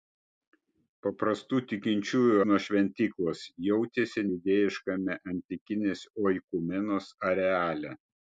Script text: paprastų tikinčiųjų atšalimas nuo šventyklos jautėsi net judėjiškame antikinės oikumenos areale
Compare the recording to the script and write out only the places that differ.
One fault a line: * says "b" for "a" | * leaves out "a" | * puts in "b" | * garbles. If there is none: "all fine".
* leaves out "atšalimas"
* leaves out "net"